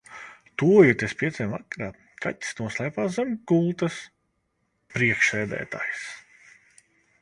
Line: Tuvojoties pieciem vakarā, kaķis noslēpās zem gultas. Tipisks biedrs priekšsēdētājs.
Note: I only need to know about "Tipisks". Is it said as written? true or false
false